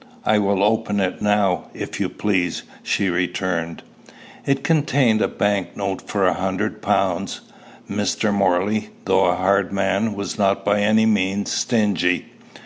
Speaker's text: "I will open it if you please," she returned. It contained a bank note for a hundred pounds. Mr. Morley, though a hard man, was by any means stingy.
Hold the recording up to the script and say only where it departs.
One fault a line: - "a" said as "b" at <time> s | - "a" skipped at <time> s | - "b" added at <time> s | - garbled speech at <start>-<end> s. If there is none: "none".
- "now" added at 1.2 s
- "not" added at 10.4 s